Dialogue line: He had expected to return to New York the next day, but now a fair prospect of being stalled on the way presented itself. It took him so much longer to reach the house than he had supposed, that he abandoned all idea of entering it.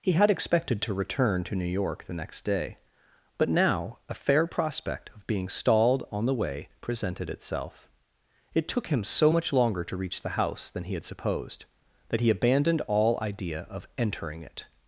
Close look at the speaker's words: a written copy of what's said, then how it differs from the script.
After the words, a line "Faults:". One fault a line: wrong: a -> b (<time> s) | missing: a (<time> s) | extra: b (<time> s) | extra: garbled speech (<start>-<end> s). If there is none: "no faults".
He had expected to return to New York the next day, but now a fair prospect of being stalled on the way presented itself. It took him so much longer to reach the house than he had supposed, that he abandoned all idea of entering it.
Faults:
no faults